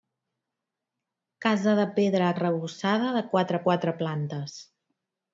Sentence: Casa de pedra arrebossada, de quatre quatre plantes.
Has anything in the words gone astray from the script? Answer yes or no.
no